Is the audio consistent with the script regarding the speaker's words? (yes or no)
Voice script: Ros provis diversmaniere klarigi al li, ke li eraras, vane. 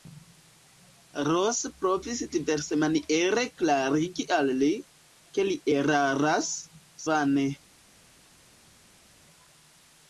yes